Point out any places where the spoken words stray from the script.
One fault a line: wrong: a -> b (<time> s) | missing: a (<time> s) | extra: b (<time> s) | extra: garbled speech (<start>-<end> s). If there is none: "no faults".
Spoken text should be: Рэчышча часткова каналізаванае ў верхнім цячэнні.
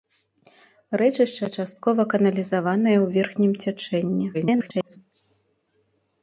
extra: garbled speech (4.3-5.0 s)